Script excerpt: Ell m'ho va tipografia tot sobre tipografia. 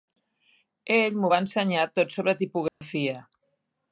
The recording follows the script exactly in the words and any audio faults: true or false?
false